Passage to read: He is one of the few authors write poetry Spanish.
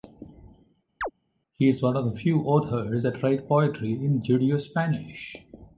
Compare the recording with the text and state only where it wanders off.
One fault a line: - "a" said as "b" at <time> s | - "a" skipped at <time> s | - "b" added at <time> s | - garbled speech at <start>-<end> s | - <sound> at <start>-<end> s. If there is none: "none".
- chirp at 1.0-1.1 s
- "that" added at 3.0 s
- "in Judeo" added at 3.9 s